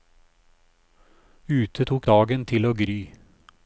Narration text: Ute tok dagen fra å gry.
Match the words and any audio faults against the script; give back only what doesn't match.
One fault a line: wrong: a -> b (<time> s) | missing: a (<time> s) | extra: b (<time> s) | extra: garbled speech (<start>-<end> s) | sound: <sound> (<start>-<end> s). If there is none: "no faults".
wrong: fra -> til (2.5 s)